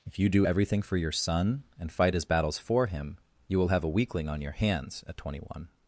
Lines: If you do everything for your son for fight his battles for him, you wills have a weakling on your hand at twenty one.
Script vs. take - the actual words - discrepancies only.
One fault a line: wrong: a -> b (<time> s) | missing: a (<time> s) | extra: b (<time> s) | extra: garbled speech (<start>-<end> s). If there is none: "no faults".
wrong: for -> and (1.8 s)
wrong: wills -> will (3.6 s)
wrong: hand -> hands (4.5 s)